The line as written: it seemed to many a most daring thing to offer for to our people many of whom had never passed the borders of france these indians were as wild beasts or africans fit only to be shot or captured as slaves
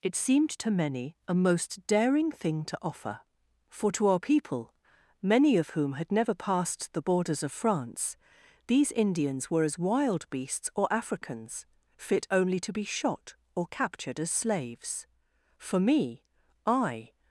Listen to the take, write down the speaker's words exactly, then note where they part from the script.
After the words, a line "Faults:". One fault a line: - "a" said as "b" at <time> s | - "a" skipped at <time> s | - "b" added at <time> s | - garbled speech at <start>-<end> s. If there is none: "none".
it seemed to many a most daring thing to offer for to our people many of whom had never passed the borders of france these indians were as wild beasts or africans fit only to be shot or captured as slaves for me i
Faults:
- "for me i" added at 15.6 s